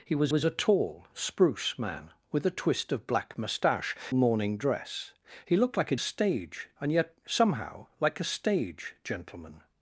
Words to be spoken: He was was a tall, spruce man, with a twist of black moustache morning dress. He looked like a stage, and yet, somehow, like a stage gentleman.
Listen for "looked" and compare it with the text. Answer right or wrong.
right